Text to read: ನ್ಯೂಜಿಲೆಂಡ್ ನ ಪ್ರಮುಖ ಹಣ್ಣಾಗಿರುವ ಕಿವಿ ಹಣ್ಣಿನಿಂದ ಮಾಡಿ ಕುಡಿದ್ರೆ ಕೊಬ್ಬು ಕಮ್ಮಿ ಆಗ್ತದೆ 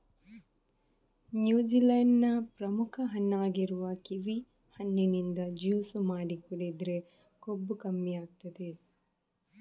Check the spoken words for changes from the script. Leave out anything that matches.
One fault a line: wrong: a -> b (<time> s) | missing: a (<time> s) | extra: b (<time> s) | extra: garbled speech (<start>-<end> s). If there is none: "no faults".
extra: ಜ್ಯೂಸು (5.6 s)